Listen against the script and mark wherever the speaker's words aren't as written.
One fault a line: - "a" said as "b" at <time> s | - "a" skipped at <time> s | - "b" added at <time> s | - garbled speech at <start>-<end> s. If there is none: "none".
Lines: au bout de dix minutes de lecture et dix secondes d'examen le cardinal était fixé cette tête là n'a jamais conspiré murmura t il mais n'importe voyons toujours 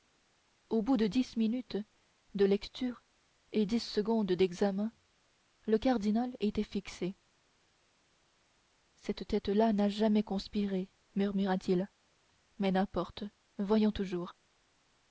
none